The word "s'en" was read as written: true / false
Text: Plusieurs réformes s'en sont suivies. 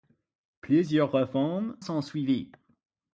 false